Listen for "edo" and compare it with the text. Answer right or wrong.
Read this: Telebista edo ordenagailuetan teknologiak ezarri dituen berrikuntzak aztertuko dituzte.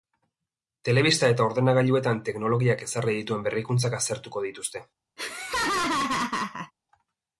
wrong